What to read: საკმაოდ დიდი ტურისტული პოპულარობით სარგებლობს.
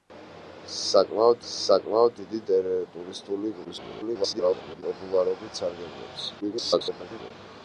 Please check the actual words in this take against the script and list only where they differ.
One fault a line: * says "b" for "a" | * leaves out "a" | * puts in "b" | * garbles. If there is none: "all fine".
* puts in "საკმაოდ"
* garbles
* garbles